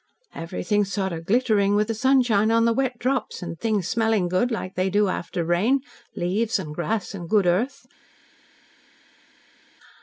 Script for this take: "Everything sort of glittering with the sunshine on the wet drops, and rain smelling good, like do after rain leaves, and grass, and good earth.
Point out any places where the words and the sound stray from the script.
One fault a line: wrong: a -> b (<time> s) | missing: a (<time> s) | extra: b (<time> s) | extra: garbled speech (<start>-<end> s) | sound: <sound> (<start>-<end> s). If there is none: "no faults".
wrong: rain -> things (3.6 s)
extra: they (4.8 s)